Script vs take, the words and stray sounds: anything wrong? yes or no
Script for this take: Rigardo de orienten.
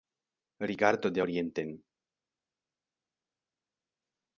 no